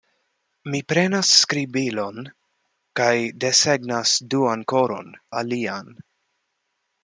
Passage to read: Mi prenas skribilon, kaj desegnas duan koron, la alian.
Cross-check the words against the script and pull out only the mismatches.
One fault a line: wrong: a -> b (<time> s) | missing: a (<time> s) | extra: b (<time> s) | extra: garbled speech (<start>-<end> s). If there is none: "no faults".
no faults